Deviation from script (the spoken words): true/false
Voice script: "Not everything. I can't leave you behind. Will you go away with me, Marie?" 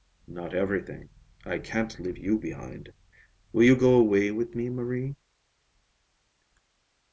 false